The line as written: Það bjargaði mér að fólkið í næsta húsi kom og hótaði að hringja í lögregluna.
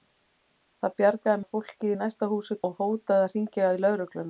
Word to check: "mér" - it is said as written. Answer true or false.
false